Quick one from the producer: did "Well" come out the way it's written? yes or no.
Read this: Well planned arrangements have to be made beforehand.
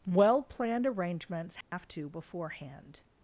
yes